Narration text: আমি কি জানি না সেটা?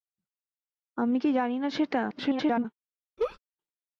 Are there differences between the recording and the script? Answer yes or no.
yes